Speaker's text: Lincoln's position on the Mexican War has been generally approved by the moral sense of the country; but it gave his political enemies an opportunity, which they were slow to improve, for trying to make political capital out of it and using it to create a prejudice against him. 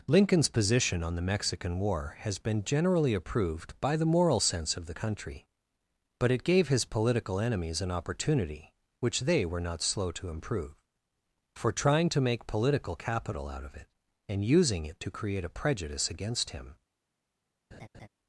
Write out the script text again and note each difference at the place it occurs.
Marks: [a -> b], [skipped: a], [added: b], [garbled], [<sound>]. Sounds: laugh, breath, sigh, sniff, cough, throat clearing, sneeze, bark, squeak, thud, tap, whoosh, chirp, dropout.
Lincoln's position on the Mexican War has been generally approved by the moral sense of the country; but it gave his political enemies an opportunity, which they were [added: not] slow to improve, for trying to make political capital out of it and using it to create a prejudice against him. [laugh]